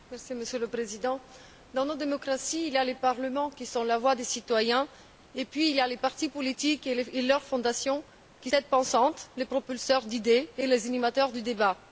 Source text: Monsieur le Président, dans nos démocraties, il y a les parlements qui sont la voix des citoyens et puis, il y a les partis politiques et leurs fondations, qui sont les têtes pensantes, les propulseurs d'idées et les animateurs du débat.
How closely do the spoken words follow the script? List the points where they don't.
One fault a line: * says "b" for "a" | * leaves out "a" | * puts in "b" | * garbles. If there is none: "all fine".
* leaves out "sont les"